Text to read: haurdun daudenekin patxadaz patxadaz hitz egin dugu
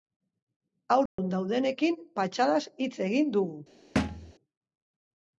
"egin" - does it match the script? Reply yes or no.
yes